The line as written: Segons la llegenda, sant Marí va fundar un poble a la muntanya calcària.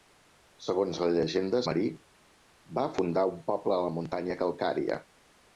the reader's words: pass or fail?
fail